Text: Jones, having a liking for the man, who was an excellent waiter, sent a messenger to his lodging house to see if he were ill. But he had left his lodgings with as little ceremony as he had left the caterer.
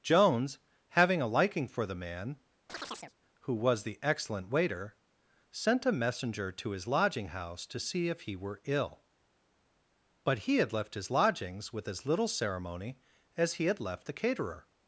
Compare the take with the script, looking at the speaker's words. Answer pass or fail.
fail